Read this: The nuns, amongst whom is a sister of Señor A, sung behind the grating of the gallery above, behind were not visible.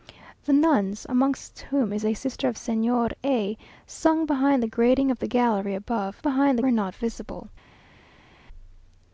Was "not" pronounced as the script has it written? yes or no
yes